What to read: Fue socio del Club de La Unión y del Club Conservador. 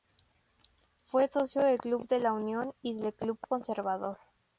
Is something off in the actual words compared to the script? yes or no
no